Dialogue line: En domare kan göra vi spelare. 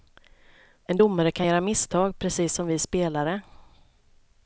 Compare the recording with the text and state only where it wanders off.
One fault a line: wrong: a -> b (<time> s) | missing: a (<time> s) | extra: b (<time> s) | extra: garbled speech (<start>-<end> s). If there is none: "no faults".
extra: misstag precis som (1.6 s)